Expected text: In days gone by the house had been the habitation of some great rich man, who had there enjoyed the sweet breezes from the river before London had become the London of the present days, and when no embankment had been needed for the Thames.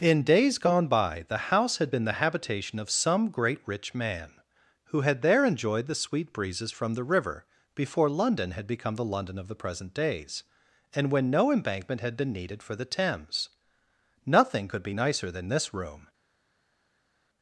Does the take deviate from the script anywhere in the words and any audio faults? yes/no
yes